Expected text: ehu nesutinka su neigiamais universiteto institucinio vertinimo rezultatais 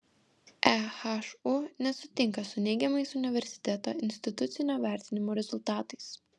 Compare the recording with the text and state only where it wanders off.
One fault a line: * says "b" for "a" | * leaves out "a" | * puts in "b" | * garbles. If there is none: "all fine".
all fine